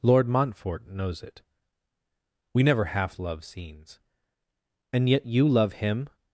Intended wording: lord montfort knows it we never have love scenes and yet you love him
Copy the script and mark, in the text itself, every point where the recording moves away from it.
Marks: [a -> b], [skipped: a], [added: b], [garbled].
lord montfort knows it we never [have -> half] love scenes and yet you love him